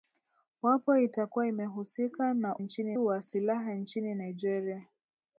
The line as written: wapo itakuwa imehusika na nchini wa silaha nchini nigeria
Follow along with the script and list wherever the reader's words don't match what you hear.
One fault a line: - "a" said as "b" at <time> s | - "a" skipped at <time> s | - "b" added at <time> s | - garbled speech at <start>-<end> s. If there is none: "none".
none